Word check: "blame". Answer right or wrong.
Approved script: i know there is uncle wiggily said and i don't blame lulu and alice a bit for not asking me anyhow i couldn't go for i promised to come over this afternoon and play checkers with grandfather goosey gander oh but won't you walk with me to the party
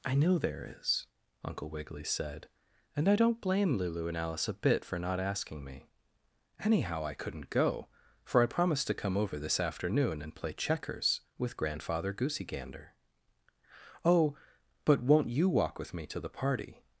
right